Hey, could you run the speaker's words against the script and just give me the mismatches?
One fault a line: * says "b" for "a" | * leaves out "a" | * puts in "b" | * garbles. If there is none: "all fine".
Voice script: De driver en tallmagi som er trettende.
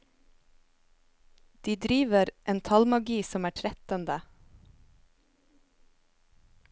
all fine